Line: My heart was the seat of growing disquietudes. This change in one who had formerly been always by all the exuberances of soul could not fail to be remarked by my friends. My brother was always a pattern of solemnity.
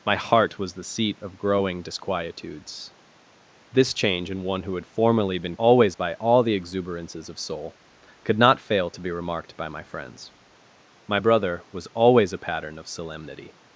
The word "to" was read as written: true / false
true